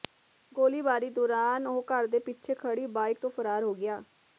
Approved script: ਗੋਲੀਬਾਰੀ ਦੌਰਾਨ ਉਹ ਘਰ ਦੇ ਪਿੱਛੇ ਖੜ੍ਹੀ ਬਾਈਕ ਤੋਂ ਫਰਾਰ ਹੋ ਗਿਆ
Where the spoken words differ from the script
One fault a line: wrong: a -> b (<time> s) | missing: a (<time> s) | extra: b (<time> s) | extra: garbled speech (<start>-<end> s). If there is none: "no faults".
no faults